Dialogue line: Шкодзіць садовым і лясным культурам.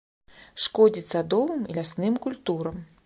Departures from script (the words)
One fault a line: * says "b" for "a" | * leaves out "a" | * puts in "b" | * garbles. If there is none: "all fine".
all fine